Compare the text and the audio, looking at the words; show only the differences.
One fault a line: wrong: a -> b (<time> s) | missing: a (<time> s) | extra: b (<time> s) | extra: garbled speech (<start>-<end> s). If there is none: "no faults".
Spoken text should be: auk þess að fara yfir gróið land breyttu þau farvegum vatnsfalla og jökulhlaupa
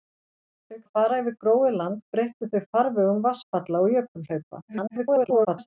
missing: þess (0.8 s)
extra: garbled speech (4.6-5.7 s)